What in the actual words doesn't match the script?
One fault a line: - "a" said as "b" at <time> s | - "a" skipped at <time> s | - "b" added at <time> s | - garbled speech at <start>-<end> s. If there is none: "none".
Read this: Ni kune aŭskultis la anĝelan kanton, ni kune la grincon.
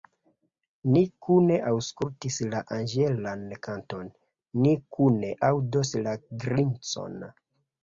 - "aŭdos" added at 5.5 s